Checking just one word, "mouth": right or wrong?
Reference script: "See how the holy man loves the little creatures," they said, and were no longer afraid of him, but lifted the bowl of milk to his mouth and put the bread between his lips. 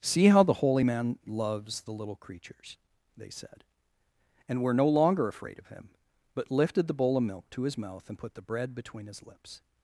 right